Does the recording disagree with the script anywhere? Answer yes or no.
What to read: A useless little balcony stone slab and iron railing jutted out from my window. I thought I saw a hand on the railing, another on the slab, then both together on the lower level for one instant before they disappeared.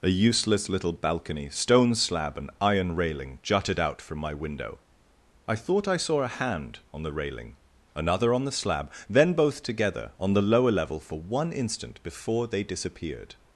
no